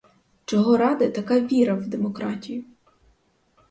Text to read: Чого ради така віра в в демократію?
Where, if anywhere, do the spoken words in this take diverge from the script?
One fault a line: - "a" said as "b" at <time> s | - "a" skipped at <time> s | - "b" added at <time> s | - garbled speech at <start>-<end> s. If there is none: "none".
- "в" skipped at 1.9 s